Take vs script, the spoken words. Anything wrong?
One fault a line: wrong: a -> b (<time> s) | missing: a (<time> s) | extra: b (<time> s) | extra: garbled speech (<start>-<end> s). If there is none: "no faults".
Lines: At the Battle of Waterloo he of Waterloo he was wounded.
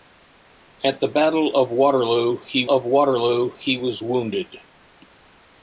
no faults